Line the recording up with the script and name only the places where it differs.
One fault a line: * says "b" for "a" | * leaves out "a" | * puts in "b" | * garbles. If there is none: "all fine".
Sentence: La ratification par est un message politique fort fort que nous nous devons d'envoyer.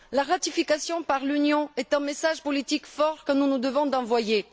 * puts in "l'Union"
* leaves out "fort"